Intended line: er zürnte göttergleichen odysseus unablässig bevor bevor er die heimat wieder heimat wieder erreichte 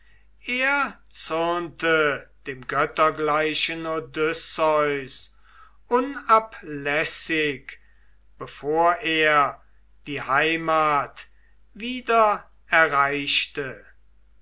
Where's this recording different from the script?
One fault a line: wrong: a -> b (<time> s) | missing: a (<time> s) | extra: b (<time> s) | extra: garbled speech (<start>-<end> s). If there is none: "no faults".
extra: dem (2.5 s)
missing: bevor (8.9 s)
missing: heimat wieder (12.5 s)